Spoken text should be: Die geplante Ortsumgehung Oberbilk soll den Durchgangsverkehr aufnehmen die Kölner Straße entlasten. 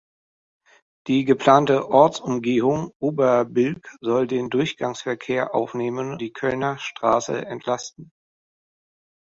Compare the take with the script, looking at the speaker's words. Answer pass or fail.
pass